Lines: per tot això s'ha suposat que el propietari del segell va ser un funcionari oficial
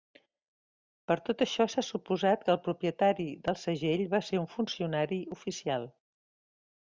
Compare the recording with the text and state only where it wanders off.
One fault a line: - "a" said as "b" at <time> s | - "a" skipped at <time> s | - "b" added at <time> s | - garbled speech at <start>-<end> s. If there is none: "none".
none